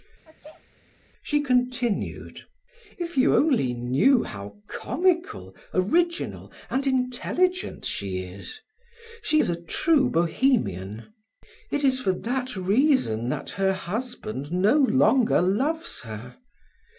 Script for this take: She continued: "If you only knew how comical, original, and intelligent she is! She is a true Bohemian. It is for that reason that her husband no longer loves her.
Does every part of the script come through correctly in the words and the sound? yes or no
no